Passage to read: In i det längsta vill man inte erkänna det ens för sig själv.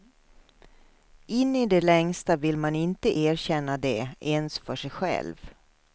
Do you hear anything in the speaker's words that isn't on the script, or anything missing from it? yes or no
no